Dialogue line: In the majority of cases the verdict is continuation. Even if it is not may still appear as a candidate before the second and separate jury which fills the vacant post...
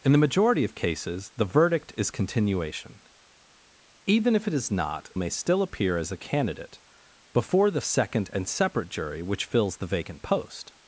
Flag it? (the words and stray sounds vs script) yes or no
no